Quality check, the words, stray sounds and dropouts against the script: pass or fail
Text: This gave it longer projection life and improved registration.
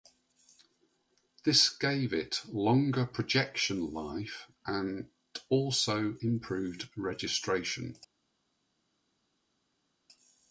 fail